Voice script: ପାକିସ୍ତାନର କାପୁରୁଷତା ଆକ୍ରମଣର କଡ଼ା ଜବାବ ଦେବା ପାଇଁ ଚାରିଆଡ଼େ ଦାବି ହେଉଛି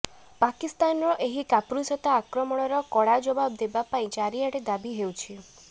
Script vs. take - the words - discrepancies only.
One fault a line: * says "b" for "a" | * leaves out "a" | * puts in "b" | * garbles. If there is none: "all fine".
* puts in "ଏହି"